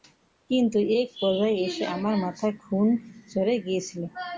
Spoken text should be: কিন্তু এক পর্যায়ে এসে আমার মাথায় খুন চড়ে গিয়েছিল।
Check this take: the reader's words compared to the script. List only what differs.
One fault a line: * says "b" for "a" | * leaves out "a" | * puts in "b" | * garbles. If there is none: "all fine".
all fine